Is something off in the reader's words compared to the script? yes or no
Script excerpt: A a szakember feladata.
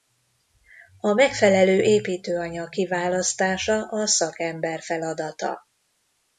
yes